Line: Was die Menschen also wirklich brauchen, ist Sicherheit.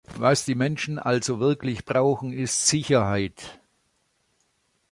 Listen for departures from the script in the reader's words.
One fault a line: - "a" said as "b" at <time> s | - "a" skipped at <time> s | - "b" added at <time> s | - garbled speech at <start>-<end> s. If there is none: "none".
none